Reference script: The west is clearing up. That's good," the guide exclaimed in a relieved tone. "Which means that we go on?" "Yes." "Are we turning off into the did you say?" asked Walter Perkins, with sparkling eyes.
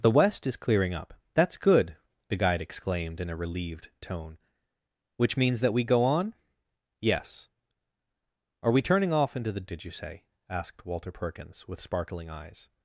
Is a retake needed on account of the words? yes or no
no